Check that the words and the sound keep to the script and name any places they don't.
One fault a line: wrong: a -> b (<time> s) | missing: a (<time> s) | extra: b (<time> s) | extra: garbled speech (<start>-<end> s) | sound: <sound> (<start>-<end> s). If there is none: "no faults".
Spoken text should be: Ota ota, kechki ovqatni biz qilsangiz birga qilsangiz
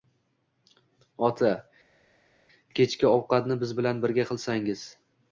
missing: ota (1.5 s)
wrong: qilsangiz -> bilan (3.8 s)